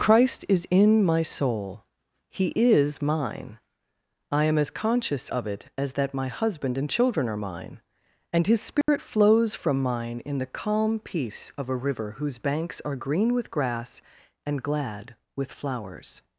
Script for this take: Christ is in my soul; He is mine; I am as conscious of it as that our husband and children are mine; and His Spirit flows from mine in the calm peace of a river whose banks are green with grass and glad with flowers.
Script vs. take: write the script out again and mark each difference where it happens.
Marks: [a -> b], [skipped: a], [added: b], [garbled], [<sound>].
Christ is in my soul; He is mine; I am as conscious of it as that [our -> my] husband and children are mine; and His Spirit [dropout] flows from mine in the calm peace of a river whose banks are green with grass and glad with flowers.